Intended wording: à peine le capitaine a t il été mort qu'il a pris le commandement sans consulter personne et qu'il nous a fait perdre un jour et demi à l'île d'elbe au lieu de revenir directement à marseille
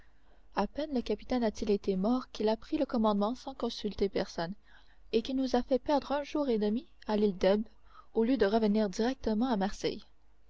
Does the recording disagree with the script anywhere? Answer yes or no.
no